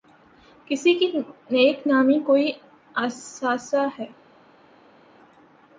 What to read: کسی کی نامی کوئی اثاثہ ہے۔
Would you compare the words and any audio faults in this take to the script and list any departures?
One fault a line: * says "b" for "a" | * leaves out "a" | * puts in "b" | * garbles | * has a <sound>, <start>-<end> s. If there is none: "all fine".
* puts in "نیک"